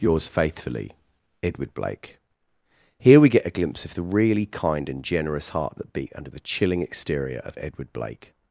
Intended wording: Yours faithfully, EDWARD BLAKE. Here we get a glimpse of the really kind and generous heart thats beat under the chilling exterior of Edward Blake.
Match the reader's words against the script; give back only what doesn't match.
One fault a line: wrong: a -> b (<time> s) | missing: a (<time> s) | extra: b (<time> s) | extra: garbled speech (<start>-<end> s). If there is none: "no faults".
wrong: thats -> that (5.8 s)